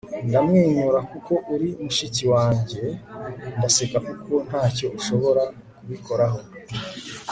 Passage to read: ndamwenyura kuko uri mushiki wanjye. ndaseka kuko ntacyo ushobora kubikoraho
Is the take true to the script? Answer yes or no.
yes